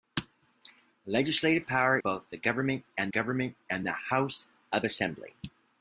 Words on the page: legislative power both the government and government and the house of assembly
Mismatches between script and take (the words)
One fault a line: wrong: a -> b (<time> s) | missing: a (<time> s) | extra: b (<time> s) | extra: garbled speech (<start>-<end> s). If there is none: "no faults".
no faults